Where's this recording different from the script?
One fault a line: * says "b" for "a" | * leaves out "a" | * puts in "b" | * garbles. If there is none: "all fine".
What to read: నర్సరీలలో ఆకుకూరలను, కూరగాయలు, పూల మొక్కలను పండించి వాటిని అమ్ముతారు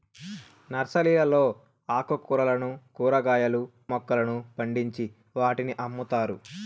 * leaves out "పూల"